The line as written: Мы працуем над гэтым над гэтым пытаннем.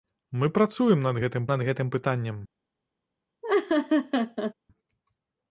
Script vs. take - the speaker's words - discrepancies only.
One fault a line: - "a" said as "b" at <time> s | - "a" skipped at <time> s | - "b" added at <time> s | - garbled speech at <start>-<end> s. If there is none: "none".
none